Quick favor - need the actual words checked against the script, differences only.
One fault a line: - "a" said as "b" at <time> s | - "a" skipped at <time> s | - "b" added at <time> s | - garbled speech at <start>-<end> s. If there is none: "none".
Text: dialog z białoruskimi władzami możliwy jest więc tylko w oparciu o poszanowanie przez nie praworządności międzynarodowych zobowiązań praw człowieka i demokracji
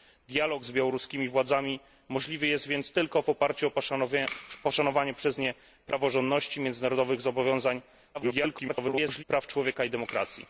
- garbled speech at 8.1-9.2 s